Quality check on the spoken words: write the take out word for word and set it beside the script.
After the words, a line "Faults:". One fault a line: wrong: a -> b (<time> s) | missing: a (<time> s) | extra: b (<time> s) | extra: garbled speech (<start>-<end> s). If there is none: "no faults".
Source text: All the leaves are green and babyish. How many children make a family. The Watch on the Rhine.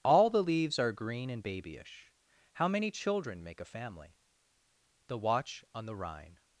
All the leaves are green and babyish. How many children make a family. The Watch on the Rhine.
Faults:
no faults